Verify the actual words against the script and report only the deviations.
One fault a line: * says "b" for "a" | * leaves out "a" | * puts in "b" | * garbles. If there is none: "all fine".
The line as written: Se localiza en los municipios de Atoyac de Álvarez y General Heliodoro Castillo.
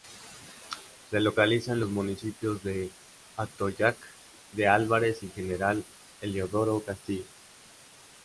all fine